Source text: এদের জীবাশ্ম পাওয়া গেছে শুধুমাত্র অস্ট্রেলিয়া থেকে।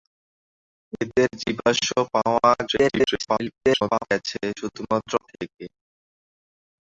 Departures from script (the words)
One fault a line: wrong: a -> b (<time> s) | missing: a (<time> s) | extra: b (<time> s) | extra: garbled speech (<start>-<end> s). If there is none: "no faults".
extra: garbled speech (2.7-4.0 s)
missing: অস্ট্রেলিয়া (5.1 s)